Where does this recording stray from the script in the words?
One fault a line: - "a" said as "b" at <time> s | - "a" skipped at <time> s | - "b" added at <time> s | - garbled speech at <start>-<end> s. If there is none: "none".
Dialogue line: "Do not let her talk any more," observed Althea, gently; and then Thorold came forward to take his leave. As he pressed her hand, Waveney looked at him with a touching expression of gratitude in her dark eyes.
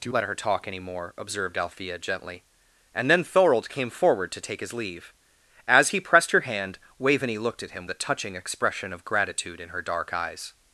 - "not" skipped at 0.1 s
- "with" skipped at 7.9 s